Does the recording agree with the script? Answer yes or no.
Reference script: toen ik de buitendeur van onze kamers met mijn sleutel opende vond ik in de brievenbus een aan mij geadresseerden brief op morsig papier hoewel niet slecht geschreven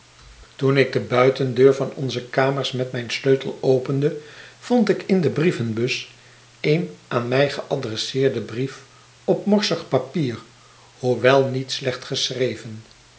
yes